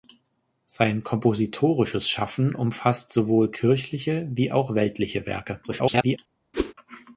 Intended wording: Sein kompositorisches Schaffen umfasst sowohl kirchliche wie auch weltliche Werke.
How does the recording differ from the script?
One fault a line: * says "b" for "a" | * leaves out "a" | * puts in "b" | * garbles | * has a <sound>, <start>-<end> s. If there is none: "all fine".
* garbles
* has a whoosh, 6.5-6.7 s